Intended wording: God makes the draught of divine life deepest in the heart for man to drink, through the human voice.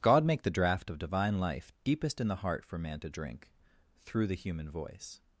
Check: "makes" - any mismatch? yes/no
yes